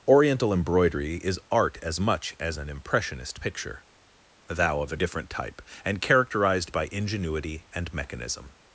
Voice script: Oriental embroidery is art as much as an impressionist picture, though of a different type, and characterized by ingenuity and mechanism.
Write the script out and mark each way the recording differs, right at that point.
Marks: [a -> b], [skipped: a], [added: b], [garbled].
Oriental embroidery is art as much as an impressionist picture, [though -> thou] of a different type, and characterized by ingenuity and mechanism.